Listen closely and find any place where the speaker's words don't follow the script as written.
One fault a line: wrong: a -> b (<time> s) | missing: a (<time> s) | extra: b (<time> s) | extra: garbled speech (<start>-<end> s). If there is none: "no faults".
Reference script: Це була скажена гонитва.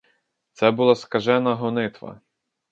no faults